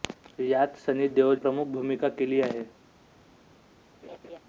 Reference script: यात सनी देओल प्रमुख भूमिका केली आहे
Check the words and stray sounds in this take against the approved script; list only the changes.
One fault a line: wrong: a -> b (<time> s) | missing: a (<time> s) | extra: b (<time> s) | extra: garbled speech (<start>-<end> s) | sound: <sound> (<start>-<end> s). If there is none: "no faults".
sound: laugh (4.0-4.4 s)